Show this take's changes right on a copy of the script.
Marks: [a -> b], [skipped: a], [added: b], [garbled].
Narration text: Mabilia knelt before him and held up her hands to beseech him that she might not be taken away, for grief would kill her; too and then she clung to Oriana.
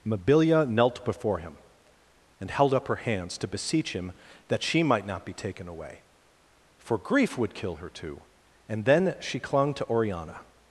Mabilia knelt before him and held up her hands to beseech him that she might not be taken away, for grief would kill her; too and then she clung to Oriana.